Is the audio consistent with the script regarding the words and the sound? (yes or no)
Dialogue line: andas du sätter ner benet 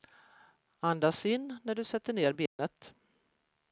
no